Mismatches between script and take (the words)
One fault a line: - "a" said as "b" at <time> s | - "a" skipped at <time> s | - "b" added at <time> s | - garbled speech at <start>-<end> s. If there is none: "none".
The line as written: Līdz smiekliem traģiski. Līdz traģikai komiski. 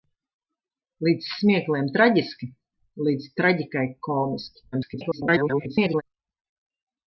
- garbled speech at 4.7-6.0 s